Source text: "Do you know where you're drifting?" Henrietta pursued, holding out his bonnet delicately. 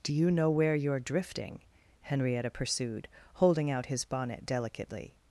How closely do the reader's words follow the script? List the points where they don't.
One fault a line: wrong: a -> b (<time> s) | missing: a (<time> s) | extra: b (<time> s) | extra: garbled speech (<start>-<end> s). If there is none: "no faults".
no faults